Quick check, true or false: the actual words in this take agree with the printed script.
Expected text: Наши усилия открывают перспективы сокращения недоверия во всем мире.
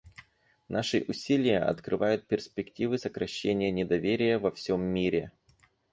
true